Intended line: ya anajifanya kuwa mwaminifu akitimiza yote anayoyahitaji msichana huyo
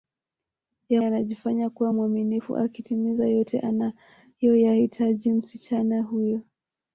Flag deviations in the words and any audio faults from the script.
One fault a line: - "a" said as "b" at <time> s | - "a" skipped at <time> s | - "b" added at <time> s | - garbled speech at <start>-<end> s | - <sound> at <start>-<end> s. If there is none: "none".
none